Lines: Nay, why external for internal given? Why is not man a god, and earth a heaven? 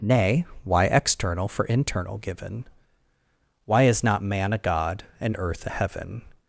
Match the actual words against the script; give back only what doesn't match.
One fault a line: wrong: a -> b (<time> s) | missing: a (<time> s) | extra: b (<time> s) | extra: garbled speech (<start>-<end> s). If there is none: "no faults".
no faults